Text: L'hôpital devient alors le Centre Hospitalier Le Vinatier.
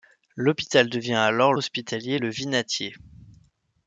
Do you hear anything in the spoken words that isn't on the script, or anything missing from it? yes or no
yes